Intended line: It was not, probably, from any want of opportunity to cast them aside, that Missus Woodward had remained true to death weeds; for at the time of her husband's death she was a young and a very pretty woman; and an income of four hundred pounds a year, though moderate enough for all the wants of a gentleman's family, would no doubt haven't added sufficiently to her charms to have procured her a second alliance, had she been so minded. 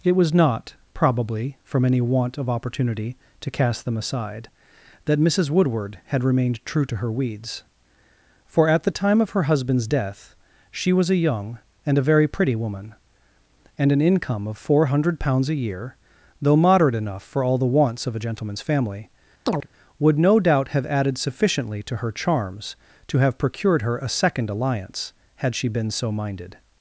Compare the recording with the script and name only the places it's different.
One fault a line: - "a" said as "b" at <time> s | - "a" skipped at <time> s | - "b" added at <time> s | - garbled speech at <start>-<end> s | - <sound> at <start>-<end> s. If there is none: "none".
- "death" said as "her" at 7.0 s
- chirp at 19.5-19.7 s
- "haven't" said as "have" at 20.7 s